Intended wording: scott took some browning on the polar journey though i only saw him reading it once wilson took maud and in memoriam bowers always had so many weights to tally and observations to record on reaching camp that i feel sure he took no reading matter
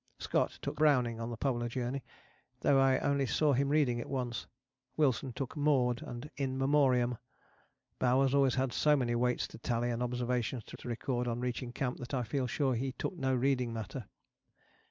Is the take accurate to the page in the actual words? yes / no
no